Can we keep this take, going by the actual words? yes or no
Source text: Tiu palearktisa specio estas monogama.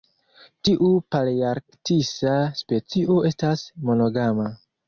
yes